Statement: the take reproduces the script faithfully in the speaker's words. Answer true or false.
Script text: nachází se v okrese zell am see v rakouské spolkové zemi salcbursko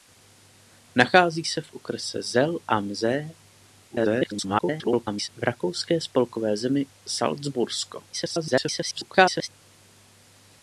false